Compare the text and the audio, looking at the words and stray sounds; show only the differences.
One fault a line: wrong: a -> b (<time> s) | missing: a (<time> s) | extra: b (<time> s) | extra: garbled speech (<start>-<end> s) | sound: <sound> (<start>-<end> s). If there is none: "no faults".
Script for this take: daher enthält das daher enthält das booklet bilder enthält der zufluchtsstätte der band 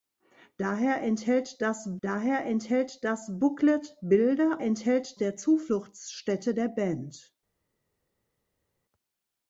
no faults